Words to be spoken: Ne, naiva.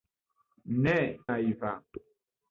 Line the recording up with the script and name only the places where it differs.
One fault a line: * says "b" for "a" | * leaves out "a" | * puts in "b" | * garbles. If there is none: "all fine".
all fine